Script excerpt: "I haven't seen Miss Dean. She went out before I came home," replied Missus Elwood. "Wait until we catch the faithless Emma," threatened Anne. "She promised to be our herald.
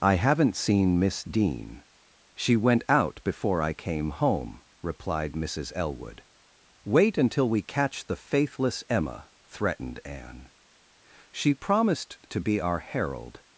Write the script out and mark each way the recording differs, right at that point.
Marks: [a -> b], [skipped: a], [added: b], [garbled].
"I haven't seen Miss Dean. She went out before I came home," replied Missus Elwood. "Wait until we catch the faithless Emma," threatened Anne. "She promised to be our herald.